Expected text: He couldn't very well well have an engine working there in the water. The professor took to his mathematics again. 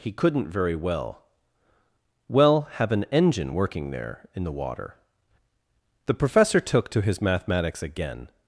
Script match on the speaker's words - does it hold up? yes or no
yes